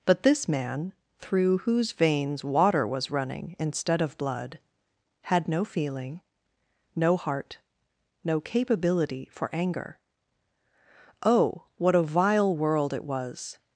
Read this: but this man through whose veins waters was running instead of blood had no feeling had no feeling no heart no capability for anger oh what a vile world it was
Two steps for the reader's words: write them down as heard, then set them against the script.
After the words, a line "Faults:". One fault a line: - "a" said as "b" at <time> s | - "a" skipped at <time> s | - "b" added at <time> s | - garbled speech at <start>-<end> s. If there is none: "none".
but this man through whose veins water was running instead of blood had no feeling no heart no capability for anger oh what a vile world it was
Faults:
- "waters" said as "water" at 2.4 s
- "had no feeling" skipped at 6.2 s